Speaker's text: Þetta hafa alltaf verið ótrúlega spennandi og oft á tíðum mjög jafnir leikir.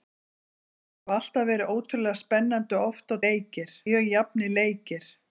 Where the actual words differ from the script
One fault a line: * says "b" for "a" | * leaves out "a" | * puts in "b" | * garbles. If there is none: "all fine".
* says "leikir" for "tíðum"